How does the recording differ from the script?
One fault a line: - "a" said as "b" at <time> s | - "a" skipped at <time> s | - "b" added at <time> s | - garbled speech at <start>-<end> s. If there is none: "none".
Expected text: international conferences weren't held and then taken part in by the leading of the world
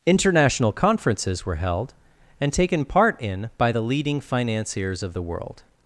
- "weren't" said as "were" at 1.4 s
- "then" skipped at 2.5 s
- "financiers" added at 4.2 s